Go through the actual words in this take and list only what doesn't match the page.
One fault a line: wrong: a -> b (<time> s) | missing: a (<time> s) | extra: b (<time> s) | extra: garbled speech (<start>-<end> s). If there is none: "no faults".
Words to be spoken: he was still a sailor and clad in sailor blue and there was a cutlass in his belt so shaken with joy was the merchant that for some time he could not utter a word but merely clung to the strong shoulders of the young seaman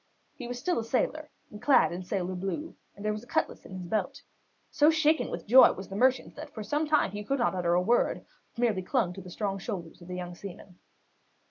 no faults